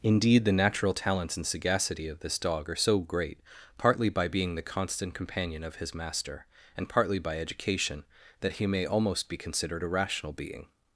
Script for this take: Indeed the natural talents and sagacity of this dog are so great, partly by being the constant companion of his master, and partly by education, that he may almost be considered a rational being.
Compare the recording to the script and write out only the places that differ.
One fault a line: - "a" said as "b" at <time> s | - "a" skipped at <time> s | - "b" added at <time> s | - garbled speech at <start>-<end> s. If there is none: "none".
none